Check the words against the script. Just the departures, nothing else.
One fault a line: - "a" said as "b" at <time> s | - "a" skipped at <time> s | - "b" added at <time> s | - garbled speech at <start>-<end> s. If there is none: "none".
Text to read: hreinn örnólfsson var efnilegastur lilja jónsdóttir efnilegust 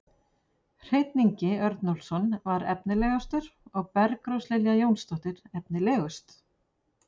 - "ingi" added at 1.2 s
- "og bergrós" added at 3.8 s